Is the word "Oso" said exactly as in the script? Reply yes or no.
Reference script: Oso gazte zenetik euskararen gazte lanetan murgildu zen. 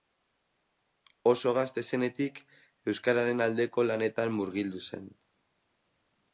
yes